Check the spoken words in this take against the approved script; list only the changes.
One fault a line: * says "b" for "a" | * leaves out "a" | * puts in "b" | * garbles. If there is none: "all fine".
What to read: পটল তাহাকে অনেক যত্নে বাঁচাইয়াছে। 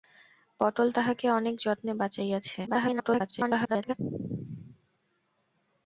* garbles